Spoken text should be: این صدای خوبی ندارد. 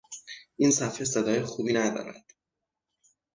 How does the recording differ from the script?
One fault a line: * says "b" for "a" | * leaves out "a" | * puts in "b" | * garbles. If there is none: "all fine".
* puts in "صفحه"